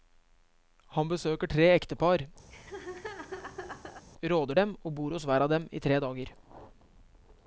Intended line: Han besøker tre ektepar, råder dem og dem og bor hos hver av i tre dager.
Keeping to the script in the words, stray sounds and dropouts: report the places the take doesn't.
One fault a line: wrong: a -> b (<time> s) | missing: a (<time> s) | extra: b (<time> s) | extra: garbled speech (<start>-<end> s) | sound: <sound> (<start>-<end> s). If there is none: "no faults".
sound: laugh (2.5-4.0 s)
missing: dem og (4.9 s)
extra: dem (5.5 s)